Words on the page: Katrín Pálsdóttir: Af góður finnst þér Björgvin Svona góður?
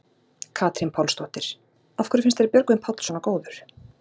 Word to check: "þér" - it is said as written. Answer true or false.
true